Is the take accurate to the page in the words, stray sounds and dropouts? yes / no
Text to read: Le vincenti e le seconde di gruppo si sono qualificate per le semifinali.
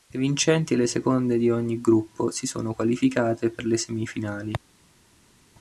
no